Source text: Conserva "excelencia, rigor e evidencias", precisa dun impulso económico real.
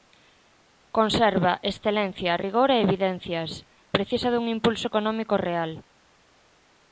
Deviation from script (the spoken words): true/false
false